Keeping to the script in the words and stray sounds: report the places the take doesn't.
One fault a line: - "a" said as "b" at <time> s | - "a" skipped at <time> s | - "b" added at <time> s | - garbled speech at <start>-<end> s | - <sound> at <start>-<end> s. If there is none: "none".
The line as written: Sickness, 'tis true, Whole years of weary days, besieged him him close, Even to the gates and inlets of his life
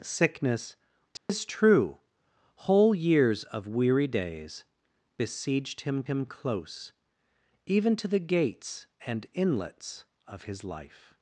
- dropout at 1.2-1.3 s